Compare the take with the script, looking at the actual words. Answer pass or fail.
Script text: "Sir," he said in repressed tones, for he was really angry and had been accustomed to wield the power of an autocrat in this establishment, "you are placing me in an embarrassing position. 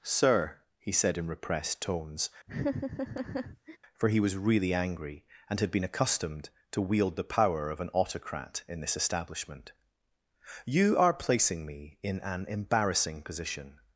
pass